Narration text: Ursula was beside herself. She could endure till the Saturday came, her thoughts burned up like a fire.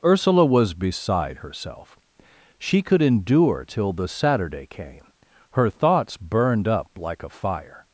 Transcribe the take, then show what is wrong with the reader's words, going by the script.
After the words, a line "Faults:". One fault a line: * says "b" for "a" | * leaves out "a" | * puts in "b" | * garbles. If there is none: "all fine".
Ursula was beside herself. She could endure till the Saturday came, her thoughts burned up like a fire.
Faults:
all fine